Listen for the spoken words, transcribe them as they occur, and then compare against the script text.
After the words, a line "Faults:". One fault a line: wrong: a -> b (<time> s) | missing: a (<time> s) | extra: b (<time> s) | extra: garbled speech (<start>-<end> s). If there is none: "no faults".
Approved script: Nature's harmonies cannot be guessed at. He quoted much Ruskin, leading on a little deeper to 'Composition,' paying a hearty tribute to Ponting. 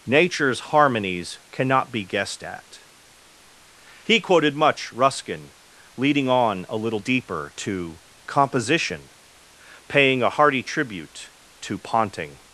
Nature's harmonies cannot be guessed at. He quoted much Ruskin, leading on a little deeper to 'Composition,' paying a hearty tribute to Ponting.
Faults:
no faults